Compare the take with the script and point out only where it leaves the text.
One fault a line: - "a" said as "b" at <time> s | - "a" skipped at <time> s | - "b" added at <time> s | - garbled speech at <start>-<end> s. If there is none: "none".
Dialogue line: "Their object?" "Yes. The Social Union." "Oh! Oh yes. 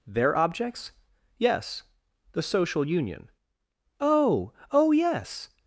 - "object" said as "objects" at 0.3 s